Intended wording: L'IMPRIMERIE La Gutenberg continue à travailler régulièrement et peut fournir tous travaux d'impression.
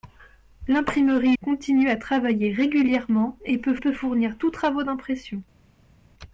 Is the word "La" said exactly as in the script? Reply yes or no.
no